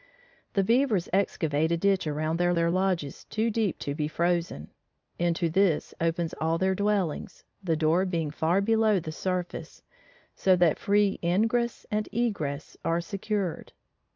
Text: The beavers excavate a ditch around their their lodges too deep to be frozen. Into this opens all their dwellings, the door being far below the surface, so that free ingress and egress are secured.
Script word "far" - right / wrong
right